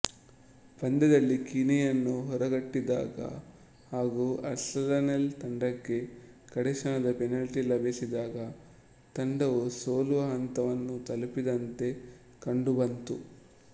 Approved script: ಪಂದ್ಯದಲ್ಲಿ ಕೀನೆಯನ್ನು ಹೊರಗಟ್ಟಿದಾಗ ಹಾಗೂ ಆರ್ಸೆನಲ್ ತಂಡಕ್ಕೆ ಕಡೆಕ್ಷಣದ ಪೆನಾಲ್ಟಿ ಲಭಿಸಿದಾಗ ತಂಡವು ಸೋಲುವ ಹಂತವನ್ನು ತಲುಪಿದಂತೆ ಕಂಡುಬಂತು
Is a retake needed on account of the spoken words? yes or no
no